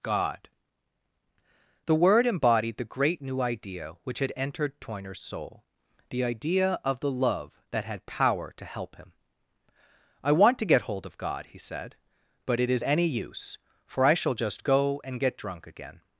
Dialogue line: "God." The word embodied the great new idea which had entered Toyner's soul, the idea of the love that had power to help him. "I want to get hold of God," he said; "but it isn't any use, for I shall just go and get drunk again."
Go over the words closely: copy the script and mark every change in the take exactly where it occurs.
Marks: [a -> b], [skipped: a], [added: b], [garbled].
"God." The word embodied the great new idea which had entered Toyner's soul, the idea of the love that had power to help him. "I want to get hold of God," he said; "but it [isn't -> is] any use, for I shall just go and get drunk again."